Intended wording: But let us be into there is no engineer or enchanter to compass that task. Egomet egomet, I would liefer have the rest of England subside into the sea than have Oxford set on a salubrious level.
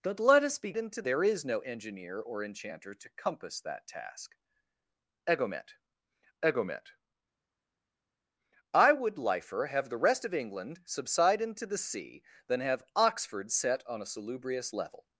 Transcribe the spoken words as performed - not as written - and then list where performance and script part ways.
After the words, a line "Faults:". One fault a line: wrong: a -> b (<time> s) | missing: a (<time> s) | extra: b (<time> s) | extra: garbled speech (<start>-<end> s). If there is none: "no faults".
But let us be into there is no engineer or enchanter to compass that task. Egomet egomet, I would liefer have the rest of England subside into the sea than have Oxford set on a salubrious level.
Faults:
no faults